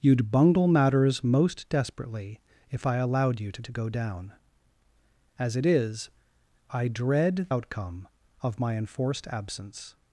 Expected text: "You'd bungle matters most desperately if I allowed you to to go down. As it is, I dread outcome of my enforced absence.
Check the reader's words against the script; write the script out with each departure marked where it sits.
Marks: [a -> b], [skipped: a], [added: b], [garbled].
"You'd bungle matters most desperately if I allowed you to to go down. As it is, I dread outcome of my enforced absence.